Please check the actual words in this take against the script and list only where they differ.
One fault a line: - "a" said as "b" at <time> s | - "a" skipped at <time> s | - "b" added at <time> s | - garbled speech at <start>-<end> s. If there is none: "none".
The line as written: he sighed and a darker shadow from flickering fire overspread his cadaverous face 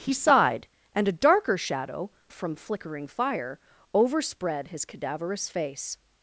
none